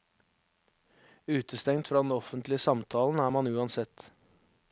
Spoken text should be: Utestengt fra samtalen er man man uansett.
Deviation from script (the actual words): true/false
true